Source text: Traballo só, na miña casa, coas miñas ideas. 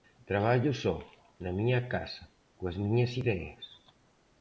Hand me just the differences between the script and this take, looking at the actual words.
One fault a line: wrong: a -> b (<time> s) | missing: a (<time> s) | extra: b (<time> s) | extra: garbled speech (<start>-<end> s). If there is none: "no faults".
no faults